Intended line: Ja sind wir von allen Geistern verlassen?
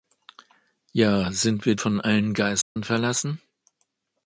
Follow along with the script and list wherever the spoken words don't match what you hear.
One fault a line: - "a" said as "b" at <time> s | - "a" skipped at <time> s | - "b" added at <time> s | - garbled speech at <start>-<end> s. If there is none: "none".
none